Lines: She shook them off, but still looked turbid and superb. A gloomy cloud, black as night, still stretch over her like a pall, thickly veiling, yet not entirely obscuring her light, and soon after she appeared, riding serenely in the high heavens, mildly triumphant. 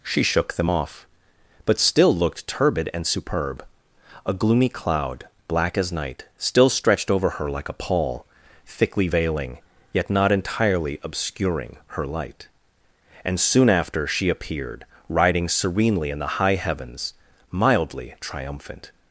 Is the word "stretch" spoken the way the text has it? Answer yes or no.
no